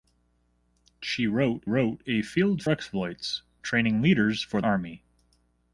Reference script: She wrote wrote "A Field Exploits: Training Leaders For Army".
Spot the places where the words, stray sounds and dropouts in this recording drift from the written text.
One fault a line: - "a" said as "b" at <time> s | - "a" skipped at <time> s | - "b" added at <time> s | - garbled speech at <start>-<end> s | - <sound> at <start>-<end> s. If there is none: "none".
none